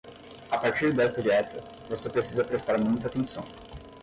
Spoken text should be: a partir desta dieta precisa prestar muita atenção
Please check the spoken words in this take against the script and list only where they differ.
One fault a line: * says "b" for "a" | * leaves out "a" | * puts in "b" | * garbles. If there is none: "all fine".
* puts in "você"